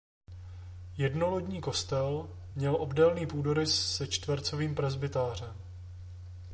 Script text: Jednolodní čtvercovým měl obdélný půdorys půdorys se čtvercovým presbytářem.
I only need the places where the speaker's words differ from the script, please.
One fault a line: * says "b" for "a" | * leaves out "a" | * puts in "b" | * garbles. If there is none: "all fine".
* says "kostel" for "čtvercovým"
* leaves out "půdorys"